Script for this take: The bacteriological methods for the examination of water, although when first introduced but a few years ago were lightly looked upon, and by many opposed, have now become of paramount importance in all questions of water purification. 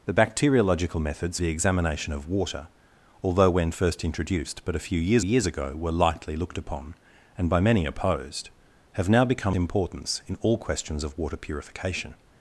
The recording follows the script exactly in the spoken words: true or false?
false